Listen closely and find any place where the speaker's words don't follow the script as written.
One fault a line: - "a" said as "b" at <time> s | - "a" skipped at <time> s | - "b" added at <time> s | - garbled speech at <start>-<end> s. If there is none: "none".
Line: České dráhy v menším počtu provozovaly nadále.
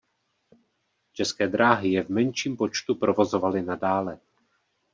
- "je" added at 1.9 s